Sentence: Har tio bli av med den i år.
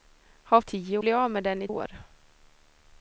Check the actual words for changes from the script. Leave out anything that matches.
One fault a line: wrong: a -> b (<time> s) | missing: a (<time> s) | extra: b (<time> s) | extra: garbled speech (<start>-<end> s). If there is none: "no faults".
no faults